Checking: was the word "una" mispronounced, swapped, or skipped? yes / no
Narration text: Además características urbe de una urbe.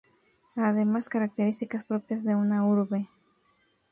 no